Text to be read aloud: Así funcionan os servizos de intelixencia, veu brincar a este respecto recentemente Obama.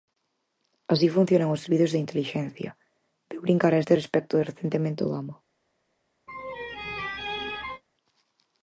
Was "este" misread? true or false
false